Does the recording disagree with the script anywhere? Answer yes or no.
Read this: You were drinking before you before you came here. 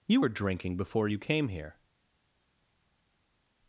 yes